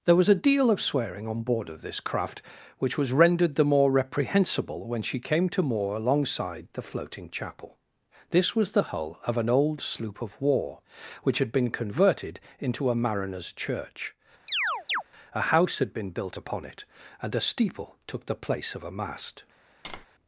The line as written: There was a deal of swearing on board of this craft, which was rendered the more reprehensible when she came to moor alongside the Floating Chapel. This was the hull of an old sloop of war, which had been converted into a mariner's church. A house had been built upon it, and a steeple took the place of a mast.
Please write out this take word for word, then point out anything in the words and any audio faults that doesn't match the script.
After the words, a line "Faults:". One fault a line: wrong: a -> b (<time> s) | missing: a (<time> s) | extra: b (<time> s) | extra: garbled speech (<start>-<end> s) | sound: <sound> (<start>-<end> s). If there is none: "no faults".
There was a deal of swearing on board of this craft, which was rendered the more reprehensible when she came to moor alongside the Floating Chapel. This was the hull of an old sloop of war, which had been converted into a mariner's church. A house had been built upon it, and a steeple took the place of a mast.
Faults:
sound: chirp (14.5-15.0 s)
sound: tap (19.8-20.1 s)